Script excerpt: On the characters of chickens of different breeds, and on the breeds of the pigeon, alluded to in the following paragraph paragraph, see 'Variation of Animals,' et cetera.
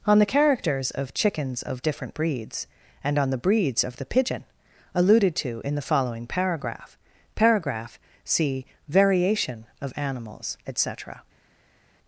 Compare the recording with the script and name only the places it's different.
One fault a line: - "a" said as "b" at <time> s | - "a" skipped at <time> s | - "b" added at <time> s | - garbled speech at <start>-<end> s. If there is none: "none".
none